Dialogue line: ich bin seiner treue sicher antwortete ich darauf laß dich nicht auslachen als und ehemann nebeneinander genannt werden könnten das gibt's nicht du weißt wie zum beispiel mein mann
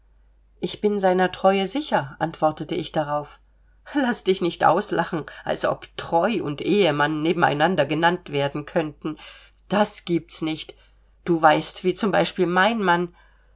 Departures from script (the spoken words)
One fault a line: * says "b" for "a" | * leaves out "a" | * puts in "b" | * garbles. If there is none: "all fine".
* puts in "ob treu"